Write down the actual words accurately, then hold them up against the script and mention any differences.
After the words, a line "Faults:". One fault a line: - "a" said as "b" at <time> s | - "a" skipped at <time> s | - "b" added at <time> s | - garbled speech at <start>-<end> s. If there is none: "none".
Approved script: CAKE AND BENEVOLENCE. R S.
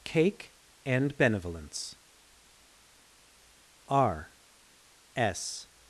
CAKE AND BENEVOLENCE. R S.
Faults:
none